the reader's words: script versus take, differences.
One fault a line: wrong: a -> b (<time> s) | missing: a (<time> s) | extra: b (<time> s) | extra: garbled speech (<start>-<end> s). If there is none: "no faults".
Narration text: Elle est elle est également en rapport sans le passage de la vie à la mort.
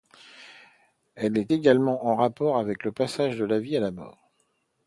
missing: elle est (1.5 s)
wrong: sans -> avec (2.6 s)